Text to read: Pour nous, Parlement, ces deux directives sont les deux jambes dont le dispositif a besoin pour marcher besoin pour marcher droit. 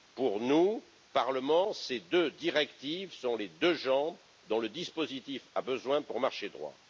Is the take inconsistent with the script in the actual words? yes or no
yes